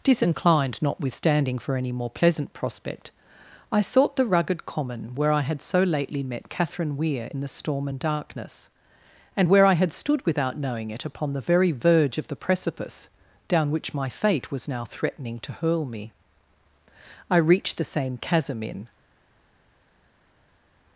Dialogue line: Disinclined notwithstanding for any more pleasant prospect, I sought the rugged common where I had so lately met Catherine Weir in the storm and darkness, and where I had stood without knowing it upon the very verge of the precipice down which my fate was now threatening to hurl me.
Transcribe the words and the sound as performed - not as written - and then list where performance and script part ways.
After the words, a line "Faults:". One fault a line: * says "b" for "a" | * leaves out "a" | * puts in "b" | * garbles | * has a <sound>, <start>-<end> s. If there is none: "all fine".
Disinclined notwithstanding for any more pleasant prospect, I sought the rugged common where I had so lately met Catherine Weir in the storm and darkness, and where I had stood without knowing it upon the very verge of the precipice down which my fate was now threatening to hurl me. I reached the same chasm in
Faults:
* puts in "I reached the same chasm in"